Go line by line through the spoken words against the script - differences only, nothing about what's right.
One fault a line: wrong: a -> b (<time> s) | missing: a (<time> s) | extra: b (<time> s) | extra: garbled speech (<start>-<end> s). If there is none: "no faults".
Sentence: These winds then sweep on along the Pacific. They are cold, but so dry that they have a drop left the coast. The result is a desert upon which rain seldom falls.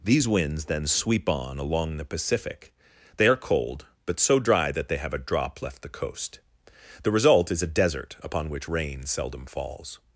no faults